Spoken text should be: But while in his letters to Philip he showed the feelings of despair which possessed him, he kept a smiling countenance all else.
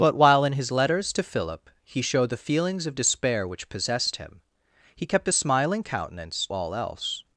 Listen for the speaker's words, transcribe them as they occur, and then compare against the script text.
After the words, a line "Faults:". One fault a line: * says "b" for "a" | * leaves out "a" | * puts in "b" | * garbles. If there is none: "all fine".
But while in his letters to Philip he showed the feelings of despair which possessed him, he kept a smiling countenance all else.
Faults:
all fine